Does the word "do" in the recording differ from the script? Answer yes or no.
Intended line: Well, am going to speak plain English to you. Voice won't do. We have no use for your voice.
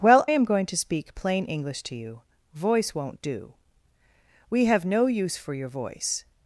no